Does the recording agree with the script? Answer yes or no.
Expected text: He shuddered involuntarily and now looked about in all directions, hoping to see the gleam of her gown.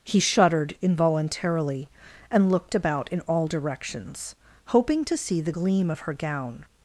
no